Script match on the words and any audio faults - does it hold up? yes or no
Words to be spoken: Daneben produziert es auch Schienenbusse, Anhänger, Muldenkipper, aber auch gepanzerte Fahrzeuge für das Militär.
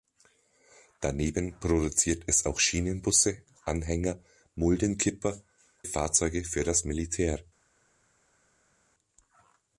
no